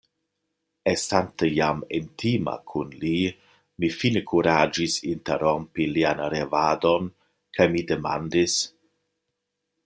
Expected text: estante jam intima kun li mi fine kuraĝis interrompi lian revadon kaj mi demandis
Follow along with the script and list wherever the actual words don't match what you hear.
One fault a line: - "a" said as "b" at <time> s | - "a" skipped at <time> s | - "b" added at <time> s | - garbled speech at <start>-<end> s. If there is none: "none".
none